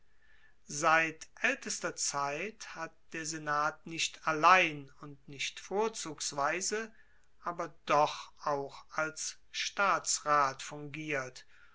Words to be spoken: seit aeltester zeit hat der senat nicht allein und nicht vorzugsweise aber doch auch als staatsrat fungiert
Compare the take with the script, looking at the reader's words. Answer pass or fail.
pass